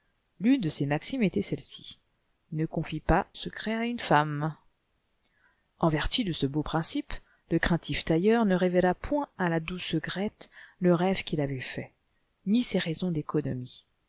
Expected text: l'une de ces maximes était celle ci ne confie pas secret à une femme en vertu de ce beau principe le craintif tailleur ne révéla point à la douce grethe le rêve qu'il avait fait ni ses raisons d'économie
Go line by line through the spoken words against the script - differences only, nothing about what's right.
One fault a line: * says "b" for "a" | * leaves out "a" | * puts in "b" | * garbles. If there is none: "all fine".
all fine